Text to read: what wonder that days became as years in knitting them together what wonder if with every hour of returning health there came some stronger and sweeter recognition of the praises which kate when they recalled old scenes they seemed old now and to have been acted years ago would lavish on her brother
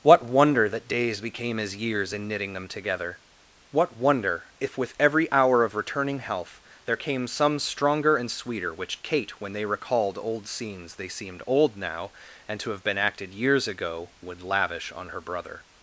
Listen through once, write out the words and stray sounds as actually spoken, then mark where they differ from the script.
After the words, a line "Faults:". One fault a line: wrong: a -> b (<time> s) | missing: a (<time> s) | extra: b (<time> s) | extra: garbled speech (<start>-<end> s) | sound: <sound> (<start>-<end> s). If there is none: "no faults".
what wonder that days became as years in knitting them together what wonder if with every hour of returning health there came some stronger and sweeter which kate when they recalled old scenes they seemed old now and to have been acted years ago would lavish on her brother
Faults:
missing: recognition of the praises (8.7 s)